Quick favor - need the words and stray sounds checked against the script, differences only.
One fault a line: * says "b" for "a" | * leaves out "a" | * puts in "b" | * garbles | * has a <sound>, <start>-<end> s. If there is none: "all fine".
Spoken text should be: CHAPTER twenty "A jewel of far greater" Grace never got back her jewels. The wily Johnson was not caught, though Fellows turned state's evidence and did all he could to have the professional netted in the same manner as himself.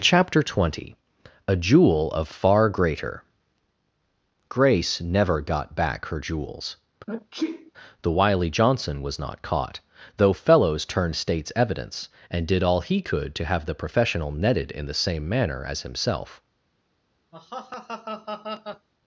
* has a sneeze, 7.1-7.7 s
* has a laugh, 17.3-18.9 s